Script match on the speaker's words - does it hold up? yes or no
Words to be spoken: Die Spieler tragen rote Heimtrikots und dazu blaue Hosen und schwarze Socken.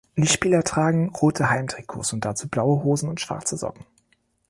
yes